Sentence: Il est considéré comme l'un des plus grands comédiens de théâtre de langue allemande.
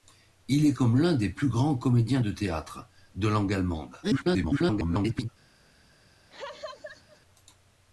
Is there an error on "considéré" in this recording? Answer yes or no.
yes